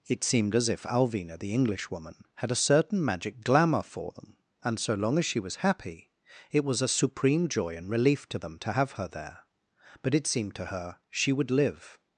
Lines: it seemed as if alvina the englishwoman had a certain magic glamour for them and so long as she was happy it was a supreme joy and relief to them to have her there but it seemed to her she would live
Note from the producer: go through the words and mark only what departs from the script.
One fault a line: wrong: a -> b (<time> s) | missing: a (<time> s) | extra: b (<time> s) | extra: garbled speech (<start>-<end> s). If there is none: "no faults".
no faults